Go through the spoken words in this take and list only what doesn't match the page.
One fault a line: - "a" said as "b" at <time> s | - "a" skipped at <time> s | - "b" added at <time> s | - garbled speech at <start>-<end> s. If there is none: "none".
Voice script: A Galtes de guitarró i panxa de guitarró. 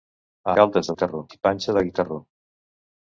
none